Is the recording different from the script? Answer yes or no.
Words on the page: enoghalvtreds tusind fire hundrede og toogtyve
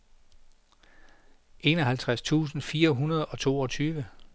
no